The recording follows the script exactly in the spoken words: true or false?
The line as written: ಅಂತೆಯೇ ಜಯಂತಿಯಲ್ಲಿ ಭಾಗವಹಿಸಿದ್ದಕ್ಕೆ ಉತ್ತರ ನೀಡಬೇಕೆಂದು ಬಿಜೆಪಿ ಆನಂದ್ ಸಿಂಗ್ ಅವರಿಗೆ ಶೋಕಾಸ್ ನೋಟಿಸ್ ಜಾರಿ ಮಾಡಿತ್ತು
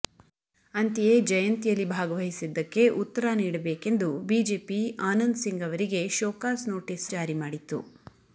true